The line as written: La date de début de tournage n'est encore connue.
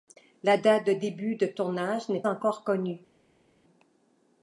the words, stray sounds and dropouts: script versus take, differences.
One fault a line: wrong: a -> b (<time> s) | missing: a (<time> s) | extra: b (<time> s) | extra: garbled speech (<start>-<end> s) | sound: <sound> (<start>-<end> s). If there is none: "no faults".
no faults